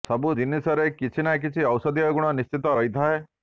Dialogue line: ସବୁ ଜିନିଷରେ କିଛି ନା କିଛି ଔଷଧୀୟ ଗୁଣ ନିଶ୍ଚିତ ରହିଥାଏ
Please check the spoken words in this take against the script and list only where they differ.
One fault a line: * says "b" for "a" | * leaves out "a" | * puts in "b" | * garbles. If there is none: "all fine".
all fine